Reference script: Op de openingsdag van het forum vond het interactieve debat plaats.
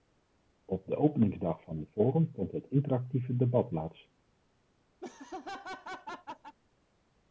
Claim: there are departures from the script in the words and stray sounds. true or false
true